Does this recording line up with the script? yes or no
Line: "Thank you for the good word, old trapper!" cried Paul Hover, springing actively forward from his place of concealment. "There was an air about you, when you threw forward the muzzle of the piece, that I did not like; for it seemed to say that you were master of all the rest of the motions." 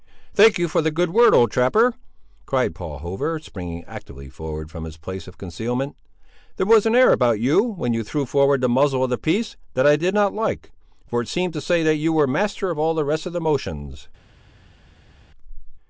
yes